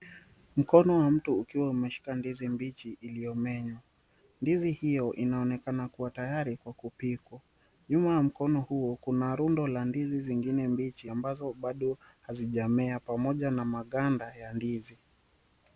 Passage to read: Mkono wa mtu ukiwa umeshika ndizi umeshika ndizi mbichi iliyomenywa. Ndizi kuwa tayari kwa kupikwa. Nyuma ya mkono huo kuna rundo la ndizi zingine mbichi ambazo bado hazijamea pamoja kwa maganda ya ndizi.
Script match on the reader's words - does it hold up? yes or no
no